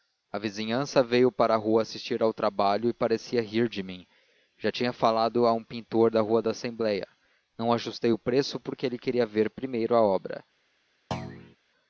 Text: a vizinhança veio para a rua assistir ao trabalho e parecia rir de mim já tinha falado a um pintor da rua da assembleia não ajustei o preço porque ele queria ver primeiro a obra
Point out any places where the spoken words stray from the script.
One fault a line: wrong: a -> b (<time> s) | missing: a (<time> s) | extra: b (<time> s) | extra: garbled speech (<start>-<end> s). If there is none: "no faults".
no faults